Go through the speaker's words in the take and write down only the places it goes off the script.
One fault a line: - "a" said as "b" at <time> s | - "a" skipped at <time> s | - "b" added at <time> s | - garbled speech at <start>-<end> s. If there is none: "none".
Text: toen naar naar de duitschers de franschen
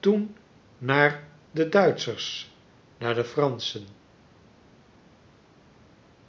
- "naar" skipped at 1.4 s
- "naar" added at 3.0 s